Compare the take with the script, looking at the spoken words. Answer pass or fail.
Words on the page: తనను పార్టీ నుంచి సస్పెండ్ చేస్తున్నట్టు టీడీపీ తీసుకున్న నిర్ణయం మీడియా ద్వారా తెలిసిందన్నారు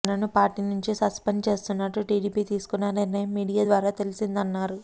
pass